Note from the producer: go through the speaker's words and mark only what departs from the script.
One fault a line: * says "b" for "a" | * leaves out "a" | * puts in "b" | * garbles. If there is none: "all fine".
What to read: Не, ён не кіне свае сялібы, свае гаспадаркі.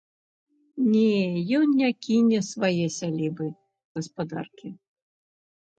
* leaves out "свае"